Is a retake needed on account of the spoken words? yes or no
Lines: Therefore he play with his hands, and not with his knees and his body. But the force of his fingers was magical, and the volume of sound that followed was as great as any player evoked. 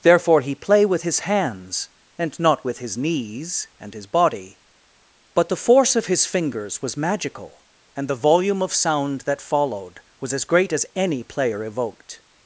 no